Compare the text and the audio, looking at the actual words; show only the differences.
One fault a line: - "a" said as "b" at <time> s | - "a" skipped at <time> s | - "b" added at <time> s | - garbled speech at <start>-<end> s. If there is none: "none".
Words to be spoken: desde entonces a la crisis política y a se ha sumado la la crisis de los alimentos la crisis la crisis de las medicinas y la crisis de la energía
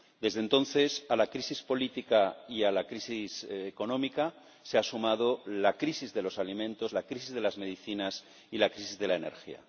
- "la crisis económica" added at 2.7 s
- "la" skipped at 5.8 s
- "la crisis" skipped at 7.3 s